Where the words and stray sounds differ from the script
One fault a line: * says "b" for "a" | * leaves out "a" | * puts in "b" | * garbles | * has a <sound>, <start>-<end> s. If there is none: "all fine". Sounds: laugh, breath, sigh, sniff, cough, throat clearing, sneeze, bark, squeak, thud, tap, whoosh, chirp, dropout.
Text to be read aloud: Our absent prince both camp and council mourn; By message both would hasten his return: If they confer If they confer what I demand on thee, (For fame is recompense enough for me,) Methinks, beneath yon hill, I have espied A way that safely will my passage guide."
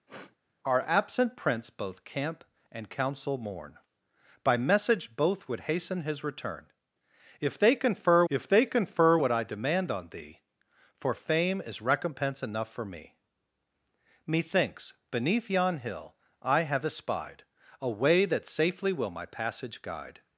* has a sniff, 0.1-0.4 s